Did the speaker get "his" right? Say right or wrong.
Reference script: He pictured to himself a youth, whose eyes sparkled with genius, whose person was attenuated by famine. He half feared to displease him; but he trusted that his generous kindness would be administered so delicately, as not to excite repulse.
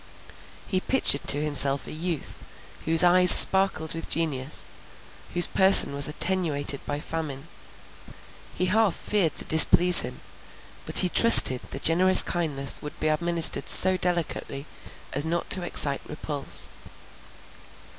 wrong